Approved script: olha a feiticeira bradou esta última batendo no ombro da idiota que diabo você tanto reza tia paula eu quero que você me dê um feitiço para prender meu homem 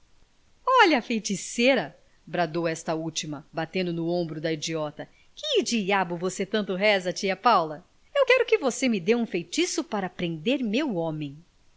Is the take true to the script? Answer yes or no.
yes